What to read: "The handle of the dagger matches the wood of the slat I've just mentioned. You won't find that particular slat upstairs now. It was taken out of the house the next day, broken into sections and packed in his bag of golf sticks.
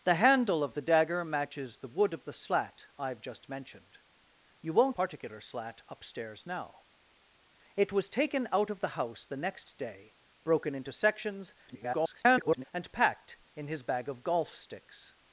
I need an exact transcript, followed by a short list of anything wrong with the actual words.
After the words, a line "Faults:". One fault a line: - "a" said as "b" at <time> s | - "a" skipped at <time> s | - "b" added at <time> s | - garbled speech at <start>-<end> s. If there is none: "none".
"The handle of the dagger matches the wood of the slat I've just mentioned. You won't particular slat upstairs now. It was taken out of the house the next day, broken into sections [garbled] and packed in his bag of golf sticks.
Faults:
- "find that" skipped at 5.0 s
- garbled speech at 11.7-12.6 s